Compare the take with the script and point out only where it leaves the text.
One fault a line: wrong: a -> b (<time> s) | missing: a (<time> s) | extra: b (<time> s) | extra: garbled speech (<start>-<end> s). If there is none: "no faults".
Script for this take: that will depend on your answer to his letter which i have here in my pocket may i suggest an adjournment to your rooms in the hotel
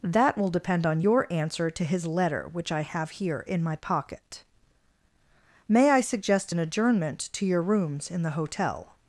no faults